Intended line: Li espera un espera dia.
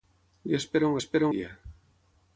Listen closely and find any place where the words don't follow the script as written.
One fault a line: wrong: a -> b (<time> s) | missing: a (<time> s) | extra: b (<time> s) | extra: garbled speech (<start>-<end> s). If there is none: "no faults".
no faults